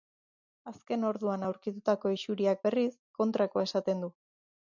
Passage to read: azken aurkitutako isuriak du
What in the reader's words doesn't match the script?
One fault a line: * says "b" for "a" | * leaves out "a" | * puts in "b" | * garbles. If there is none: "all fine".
* puts in "orduan"
* puts in "berriz kontrakoa esaten"